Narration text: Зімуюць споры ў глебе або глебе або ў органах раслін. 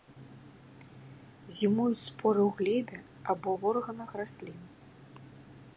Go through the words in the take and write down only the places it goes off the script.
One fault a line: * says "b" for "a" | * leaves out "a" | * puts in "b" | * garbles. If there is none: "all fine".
* leaves out "глебе або"